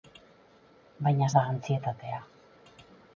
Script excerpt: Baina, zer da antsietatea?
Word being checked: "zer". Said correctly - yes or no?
no